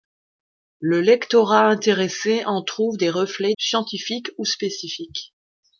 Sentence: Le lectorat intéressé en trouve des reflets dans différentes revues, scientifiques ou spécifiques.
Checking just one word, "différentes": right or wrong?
wrong